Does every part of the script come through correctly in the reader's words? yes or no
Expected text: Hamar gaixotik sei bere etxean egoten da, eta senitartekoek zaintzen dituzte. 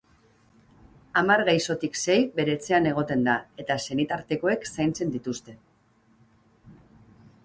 yes